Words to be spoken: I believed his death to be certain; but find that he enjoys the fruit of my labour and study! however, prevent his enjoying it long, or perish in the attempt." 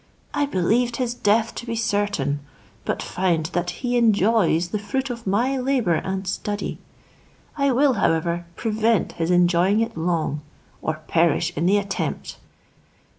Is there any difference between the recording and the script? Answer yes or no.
yes